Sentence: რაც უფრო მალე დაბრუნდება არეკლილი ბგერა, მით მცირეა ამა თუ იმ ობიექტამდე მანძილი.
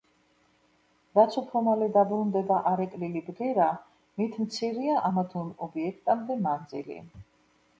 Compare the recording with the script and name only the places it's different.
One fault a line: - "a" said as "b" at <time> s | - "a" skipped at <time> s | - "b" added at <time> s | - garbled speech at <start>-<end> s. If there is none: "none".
none